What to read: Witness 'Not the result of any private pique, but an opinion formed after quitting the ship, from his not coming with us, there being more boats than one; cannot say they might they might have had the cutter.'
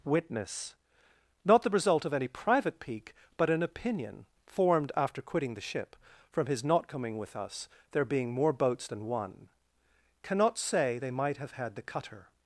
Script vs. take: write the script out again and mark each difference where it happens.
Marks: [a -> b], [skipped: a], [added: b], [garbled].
Witness 'Not the result of any private pique, but an opinion formed after quitting the ship, from his not coming with us, there being more boats than one; cannot say they might [skipped: they might] have had the cutter.'